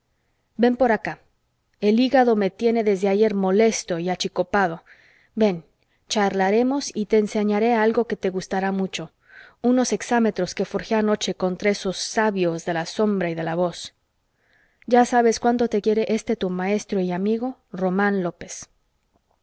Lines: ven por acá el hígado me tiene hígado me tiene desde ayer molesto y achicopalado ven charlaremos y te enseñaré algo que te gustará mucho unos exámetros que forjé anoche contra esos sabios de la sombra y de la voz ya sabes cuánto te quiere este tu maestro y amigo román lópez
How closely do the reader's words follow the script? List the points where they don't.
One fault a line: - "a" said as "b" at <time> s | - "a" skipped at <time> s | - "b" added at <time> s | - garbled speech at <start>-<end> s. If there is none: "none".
- "hígado me tiene" skipped at 2.8 s